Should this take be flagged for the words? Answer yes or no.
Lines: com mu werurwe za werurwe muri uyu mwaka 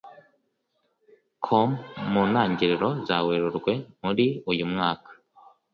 yes